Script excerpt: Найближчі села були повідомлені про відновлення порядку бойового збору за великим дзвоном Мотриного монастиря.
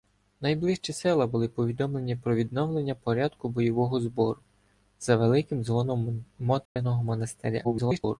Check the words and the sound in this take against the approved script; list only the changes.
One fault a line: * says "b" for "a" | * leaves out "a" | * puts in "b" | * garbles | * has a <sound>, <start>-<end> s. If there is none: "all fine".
* has a dropout, 6.7-6.8 s
* garbles